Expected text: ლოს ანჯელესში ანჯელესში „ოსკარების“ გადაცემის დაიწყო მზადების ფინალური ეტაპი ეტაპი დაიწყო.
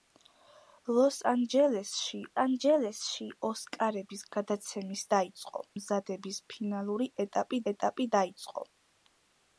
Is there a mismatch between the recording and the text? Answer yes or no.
no